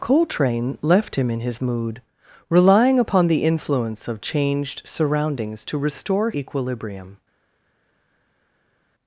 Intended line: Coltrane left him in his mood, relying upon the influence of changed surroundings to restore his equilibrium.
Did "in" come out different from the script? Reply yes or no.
no